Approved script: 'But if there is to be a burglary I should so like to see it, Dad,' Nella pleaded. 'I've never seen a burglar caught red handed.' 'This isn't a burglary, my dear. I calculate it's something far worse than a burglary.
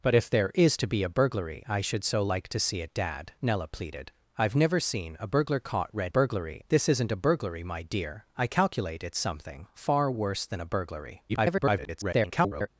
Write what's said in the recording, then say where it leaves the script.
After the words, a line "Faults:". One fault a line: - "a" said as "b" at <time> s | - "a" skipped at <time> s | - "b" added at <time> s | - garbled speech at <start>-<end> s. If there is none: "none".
'But if there is to be a burglary I should so like to see it, Dad,' Nella pleaded. 'I've never seen a burglar caught red burglary.' 'This isn't a burglary, my dear. I calculate it's something far worse than a burglary. [garbled]
Faults:
- "handed" said as "burglary" at 6.1 s
- garbled speech at 11.3-12.7 s